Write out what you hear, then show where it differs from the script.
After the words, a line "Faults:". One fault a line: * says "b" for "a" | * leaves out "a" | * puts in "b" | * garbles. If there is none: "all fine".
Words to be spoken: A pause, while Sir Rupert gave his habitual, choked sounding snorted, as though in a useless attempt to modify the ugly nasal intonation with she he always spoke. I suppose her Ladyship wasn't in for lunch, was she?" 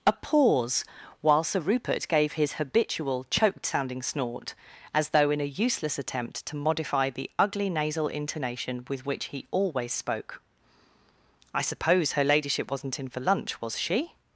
A pause, while Sir Rupert gave his habitual, choked sounding snort, as though in a useless attempt to modify the ugly nasal intonation with which he always spoke. I suppose her Ladyship wasn't in for lunch, was she?"
Faults:
* says "snort" for "snorted"
* says "which" for "she"